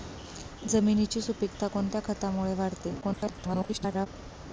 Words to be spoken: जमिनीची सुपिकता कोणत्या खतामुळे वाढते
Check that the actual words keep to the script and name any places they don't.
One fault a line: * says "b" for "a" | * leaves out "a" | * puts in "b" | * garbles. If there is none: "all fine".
* garbles